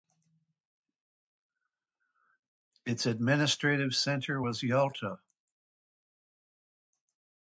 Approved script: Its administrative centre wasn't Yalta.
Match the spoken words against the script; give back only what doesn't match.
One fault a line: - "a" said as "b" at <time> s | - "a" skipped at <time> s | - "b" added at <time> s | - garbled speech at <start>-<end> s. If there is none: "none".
- "wasn't" said as "was" at 4.4 s